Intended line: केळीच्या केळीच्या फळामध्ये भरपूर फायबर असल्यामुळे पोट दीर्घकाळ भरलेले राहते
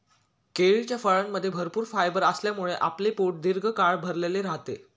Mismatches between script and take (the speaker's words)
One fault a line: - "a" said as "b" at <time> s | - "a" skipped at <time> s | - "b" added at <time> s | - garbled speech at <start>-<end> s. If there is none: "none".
- "केळीच्या" skipped at 1.0 s
- "आपले" added at 2.8 s